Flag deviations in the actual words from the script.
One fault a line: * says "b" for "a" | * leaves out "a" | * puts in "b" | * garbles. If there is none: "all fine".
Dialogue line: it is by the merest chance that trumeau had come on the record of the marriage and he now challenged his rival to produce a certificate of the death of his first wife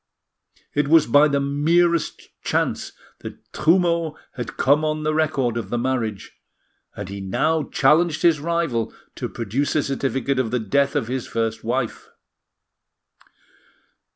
* says "was" for "is"